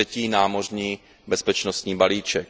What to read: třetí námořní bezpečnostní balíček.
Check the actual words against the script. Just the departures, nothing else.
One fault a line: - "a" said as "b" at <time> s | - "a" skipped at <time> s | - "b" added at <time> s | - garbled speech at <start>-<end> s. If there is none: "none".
none